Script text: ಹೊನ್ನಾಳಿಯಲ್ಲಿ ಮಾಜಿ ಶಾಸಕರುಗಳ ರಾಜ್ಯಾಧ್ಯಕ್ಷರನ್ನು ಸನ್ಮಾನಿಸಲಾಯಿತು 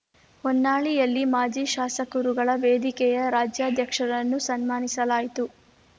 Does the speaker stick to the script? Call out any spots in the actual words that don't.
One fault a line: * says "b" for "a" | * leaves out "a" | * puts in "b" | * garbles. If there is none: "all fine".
* puts in "ವೇದಿಕೆಯ"